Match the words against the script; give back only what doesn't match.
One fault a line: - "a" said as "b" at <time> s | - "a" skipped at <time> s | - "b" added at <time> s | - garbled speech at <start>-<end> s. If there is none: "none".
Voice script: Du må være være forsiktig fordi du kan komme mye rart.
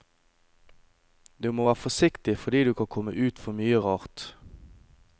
- "være" skipped at 1.8 s
- "ut for" added at 3.3 s